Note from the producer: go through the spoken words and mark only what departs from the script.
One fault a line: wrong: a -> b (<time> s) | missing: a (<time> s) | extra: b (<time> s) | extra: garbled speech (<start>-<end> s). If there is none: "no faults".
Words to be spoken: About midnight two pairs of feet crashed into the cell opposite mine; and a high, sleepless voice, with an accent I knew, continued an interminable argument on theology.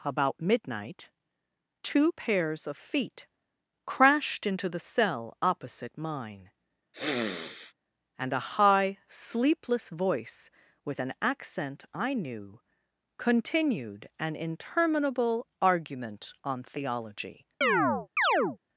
no faults